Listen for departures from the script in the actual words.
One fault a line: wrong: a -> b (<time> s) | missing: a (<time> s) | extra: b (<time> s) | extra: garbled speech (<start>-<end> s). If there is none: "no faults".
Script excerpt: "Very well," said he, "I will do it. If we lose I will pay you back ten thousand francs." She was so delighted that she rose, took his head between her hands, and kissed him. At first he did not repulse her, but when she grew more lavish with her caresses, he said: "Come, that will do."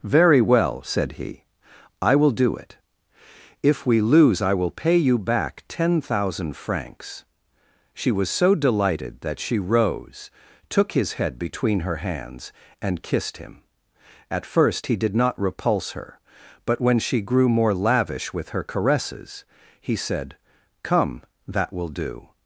no faults